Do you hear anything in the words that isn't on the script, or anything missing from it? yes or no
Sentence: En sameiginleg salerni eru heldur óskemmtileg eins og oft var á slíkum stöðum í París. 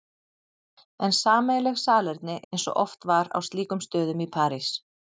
yes